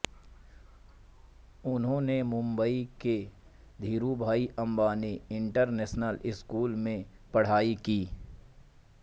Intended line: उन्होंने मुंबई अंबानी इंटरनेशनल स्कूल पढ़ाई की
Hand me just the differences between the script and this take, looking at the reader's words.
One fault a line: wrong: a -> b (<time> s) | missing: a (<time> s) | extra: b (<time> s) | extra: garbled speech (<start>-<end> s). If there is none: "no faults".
extra: के धीरूभाई (3.0 s)
extra: में (6.8 s)